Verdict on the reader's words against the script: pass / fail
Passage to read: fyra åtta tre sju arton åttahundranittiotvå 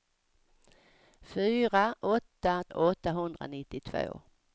fail